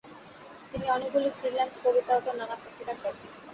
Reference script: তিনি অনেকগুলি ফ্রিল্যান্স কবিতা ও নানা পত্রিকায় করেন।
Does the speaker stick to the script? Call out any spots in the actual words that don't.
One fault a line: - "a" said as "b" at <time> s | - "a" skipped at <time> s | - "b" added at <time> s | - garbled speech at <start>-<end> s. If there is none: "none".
none